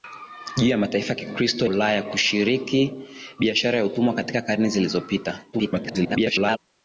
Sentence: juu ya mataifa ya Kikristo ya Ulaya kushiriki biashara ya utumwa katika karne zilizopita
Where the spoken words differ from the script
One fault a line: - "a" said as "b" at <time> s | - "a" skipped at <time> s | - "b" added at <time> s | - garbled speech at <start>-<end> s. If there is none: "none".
- "ya" skipped at 1.7 s
- garbled speech at 5.5-6.6 s